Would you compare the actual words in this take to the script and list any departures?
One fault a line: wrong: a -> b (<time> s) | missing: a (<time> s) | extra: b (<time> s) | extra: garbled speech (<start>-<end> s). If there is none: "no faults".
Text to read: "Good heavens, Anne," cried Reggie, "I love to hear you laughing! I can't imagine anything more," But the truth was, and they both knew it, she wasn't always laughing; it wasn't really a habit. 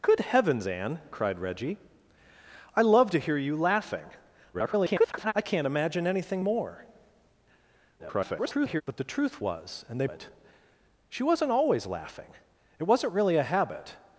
extra: garbled speech (4.5-5.3 s)
extra: garbled speech (8.0-8.8 s)
missing: both knew (10.1 s)